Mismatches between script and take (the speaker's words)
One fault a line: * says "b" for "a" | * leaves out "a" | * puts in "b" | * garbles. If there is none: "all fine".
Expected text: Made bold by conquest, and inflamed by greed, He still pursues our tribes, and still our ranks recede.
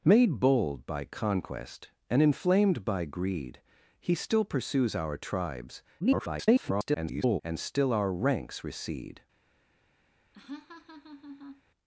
* garbles